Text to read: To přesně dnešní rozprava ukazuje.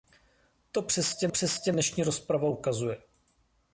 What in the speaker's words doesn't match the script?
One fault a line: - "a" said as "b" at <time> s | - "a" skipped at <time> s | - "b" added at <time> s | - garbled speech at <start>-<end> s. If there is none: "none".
- "přesně" added at 1.3 s